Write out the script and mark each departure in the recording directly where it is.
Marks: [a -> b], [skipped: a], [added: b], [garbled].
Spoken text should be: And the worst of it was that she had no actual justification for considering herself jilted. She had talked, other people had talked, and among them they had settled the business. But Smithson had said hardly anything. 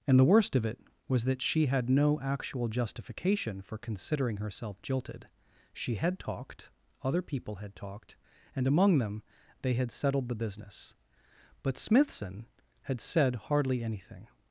And the worst of it was that she had no actual justification for considering herself jilted. She had talked, other people had talked, and among them they had settled the business. But Smithson had said hardly anything.